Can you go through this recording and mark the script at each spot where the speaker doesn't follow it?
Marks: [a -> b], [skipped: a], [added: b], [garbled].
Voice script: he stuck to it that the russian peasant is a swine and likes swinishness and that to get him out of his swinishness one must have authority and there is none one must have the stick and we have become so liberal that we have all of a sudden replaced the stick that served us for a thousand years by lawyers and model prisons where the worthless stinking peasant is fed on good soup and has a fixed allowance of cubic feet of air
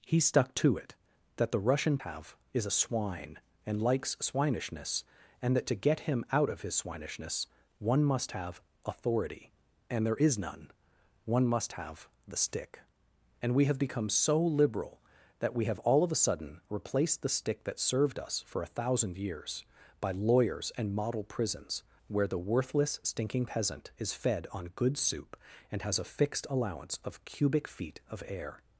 he stuck to it that the russian [peasant -> have] is a swine and likes swinishness and that to get him out of his swinishness one must have authority and there is none one must have the stick and we have become so liberal that we have all of a sudden replaced the stick that served us for a thousand years by lawyers and model prisons where the worthless stinking peasant is fed on good soup and has a fixed allowance of cubic feet of air